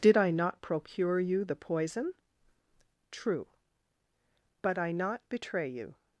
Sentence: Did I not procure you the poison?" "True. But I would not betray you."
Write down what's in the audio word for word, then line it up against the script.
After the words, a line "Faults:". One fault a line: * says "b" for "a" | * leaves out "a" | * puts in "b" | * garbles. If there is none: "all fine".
Did I not procure you the poison?" "True. But I not betray you."
Faults:
* leaves out "would"